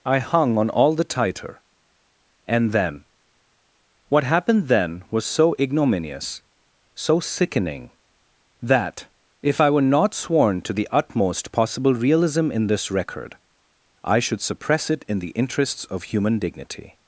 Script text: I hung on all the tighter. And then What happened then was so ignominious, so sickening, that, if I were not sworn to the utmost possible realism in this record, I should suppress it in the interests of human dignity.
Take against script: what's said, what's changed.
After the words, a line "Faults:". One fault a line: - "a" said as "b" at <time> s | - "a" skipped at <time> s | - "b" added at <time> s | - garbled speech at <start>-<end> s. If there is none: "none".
I hung on all the tighter. And then What happened then was so ignominious, so sickening, that, if I were not sworn to the utmost possible realism in this record, I should suppress it in the interests of human dignity.
Faults:
none